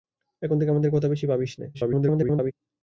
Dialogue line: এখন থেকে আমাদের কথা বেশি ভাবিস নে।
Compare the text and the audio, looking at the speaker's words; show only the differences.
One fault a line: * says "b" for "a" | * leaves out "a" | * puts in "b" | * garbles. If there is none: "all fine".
* garbles